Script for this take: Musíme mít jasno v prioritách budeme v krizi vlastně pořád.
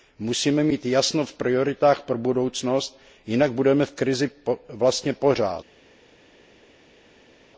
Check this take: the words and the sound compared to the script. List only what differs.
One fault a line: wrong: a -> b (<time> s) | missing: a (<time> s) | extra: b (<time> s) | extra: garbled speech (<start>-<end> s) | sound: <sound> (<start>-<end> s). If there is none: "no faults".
extra: pro budoucnost jinak (2.0 s)